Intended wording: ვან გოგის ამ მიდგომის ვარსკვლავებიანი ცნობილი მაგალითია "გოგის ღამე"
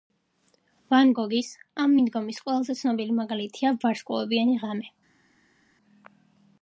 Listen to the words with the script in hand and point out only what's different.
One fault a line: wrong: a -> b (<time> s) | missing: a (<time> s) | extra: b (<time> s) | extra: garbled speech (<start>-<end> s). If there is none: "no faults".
wrong: ვარსკვლავებიანი -> ყველაზე (2.5 s)
wrong: გოგის -> ვარსკვლავებიანი (3.9 s)